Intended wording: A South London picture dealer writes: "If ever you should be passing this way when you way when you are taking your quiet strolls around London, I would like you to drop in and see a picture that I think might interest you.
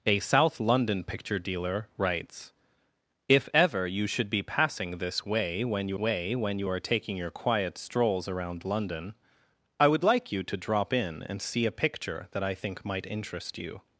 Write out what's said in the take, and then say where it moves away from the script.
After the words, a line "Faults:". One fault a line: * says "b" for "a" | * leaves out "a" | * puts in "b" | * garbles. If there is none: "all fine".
A South London picture dealer writes: "If ever you should be passing this way when you way when you are taking your quiet strolls around London, I would like you to drop in and see a picture that I think might interest you.
Faults:
all fine